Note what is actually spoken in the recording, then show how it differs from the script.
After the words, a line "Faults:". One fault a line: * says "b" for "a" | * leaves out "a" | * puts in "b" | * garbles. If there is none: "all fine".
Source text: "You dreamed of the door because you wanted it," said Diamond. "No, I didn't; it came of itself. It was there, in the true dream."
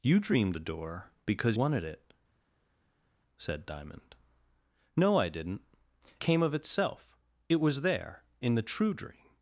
"You dreamed the door because wanted it," said Diamond. "No, I didn't; came of itself. It was there, in the true dream."
Faults:
* leaves out "of"
* leaves out "you"
* leaves out "it"